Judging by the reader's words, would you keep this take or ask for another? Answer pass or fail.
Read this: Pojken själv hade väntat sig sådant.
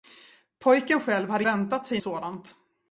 pass